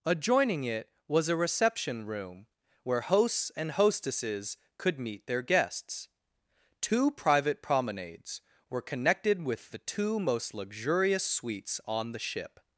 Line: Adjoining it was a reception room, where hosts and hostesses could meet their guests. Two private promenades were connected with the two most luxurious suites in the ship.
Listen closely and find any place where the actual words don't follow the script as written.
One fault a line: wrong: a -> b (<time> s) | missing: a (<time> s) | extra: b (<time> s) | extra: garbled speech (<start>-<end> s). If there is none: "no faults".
wrong: in -> on (11.8 s)